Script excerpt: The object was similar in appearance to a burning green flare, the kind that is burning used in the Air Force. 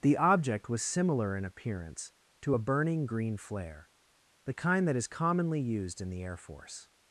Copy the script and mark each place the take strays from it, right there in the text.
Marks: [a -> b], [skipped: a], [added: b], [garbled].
The object was similar in appearance to a burning green flare, the kind that is [burning -> commonly] used in the Air Force.